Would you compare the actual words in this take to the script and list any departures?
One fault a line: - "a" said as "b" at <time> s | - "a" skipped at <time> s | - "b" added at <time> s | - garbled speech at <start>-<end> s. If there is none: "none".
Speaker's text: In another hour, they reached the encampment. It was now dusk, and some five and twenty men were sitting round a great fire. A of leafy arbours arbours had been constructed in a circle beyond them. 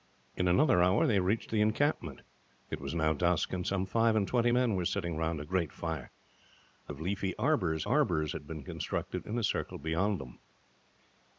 none